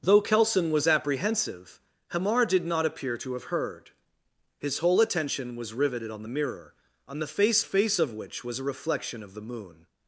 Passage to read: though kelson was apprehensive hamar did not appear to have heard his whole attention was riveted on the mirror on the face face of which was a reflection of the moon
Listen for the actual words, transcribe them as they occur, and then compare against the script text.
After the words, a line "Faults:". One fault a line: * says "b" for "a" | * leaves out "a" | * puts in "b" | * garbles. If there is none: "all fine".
though kelson was apprehensive hamar did not appear to have heard his whole attention was riveted on the mirror on the face face of which was a reflection of the moon
Faults:
all fine